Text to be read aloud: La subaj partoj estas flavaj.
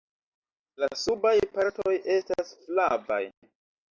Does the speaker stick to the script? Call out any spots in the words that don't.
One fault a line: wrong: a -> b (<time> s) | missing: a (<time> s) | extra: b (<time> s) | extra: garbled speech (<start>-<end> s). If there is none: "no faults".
no faults